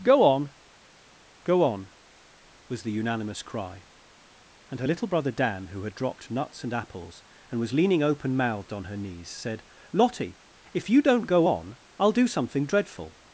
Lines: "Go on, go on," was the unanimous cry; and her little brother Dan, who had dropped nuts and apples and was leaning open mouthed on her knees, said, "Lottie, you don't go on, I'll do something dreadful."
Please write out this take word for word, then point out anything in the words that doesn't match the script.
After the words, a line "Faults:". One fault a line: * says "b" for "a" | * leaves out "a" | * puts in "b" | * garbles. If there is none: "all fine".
"Go on, go on," was the unanimous cry; and her little brother Dan, who had dropped nuts and apples and was leaning open mouthed on her knees, said, "Lottie, if you don't go on, I'll do something dreadful."
Faults:
* puts in "if"